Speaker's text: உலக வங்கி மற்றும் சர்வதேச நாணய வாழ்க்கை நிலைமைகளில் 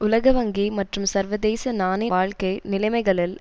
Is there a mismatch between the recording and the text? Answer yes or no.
no